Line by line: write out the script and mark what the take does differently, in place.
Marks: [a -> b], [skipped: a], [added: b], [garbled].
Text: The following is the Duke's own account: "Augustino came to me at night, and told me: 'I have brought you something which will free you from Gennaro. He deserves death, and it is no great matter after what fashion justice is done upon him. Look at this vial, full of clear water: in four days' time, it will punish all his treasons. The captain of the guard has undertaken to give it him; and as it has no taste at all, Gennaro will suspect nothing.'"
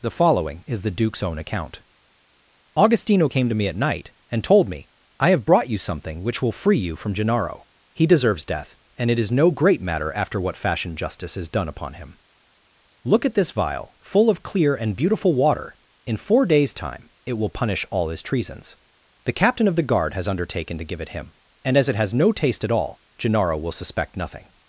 The following is the Duke's own account: "Augustino came to me at night, and told me: 'I have brought you something which will free you from Gennaro. He deserves death, and it is no great matter after what fashion justice is done upon him. Look at this vial, full of clear [added: and beautiful] water: in four days' time, it will punish all his treasons. The captain of the guard has undertaken to give it him; and as it has no taste at all, Gennaro will suspect nothing.'"